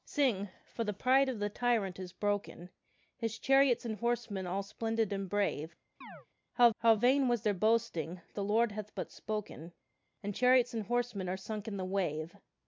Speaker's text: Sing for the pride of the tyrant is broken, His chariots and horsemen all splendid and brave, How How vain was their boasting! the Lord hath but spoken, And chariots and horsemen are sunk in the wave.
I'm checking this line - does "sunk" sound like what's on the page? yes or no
yes